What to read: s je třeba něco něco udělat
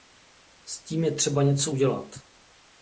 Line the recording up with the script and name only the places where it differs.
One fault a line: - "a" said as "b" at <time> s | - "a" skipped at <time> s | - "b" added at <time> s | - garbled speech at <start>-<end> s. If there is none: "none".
- "tím" added at 0.8 s
- "něco" skipped at 1.7 s